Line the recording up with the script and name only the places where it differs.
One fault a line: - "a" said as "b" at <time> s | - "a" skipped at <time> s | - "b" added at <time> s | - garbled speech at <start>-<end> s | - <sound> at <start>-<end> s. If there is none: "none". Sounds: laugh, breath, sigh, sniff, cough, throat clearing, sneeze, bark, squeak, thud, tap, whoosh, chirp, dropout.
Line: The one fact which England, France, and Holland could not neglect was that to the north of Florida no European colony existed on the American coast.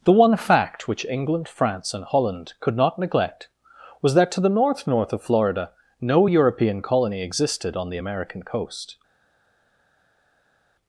- "north" added at 4.9 s